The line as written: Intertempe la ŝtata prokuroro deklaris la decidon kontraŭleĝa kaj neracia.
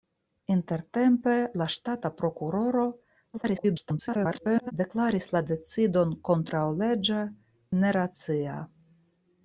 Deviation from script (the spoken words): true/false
true